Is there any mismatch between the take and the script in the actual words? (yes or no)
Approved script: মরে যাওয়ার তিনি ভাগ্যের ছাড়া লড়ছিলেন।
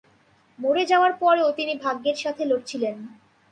yes